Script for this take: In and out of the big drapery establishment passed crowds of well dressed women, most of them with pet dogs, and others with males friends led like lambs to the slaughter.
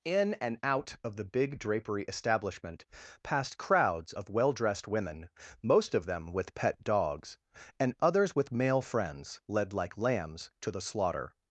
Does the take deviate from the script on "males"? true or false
true